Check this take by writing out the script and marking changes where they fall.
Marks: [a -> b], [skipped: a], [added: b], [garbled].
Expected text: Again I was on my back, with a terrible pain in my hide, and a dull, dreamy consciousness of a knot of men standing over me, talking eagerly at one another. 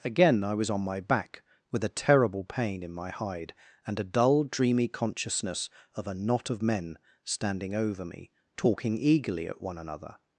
Again I was on my back, with a terrible pain in my hide, and a dull, dreamy consciousness of a knot of men standing over me, talking eagerly at one another.